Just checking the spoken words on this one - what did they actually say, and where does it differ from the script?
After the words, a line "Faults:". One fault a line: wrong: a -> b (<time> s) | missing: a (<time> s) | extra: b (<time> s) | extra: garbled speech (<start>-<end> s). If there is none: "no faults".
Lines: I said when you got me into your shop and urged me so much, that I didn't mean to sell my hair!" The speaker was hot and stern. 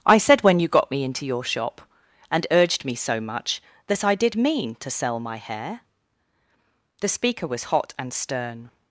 I said when you got me into your shop and urged me so much, that I did mean to sell my hair!" The speaker was hot and stern.
Faults:
wrong: didn't -> did (4.2 s)